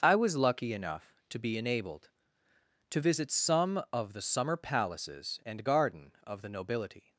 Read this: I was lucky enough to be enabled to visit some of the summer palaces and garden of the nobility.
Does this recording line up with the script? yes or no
yes